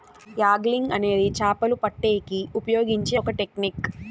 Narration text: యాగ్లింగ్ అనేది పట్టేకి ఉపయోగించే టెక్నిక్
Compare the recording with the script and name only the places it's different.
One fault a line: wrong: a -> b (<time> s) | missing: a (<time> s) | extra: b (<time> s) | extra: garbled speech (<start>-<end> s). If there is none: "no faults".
extra: చాపలు (1.4 s)
extra: ఒక (3.2 s)